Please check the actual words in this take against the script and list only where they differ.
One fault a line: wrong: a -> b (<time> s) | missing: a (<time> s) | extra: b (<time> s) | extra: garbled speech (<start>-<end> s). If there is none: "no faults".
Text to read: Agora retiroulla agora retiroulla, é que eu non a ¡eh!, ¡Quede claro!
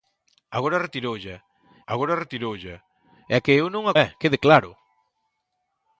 no faults